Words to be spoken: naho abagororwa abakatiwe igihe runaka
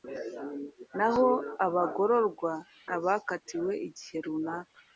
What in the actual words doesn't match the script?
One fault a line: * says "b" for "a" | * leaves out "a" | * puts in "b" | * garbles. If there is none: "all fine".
all fine